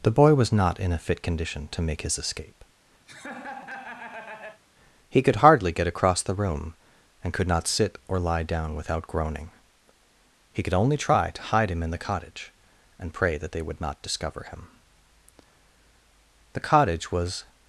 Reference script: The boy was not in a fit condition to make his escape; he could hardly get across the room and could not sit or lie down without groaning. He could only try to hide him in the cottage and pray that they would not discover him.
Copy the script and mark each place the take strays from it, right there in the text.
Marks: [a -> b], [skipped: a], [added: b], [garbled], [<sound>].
The boy was not in a fit condition to make his escape; [laugh] he could hardly get across the room and could not sit or lie down without groaning. He could only try to hide him in the cottage and pray that they would not discover him. [added: The cottage was]